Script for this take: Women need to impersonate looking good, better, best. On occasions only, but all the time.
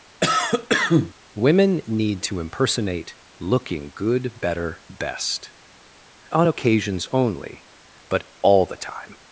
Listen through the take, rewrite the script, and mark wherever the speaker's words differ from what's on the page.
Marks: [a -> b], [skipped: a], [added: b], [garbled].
Women need to impersonate looking good, better, best. On occasions only, but all the time.